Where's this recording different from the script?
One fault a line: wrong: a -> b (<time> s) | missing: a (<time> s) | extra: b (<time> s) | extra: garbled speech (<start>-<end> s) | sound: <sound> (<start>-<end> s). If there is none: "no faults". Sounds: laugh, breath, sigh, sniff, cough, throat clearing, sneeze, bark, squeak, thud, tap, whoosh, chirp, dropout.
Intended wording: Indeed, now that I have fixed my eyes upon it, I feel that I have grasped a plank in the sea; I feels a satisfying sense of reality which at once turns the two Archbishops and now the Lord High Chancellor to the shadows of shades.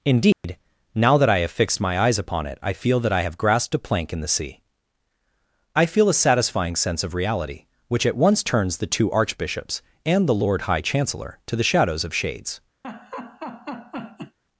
sound: dropout (0.3-0.4 s)
wrong: feels -> feel (5.8 s)
missing: now (10.3 s)
sound: laugh (12.8-14.4 s)